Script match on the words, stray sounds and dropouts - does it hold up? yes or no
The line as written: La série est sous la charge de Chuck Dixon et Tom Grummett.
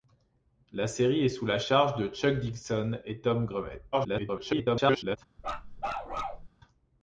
no